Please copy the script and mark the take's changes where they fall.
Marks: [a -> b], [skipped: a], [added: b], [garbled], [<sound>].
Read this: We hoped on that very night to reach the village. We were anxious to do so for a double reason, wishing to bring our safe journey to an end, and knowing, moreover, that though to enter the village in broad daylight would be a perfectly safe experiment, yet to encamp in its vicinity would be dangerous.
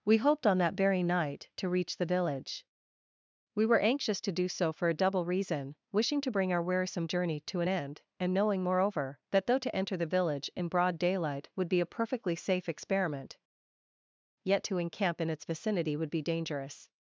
We hoped on that very night to reach the village. We were anxious to do so for a double reason, wishing to bring our [safe -> wearisome] journey to an end, and knowing, moreover, that though to enter the village in broad daylight would be a perfectly safe experiment, yet to encamp in its vicinity would be dangerous.